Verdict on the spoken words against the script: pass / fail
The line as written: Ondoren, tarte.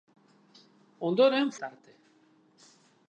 pass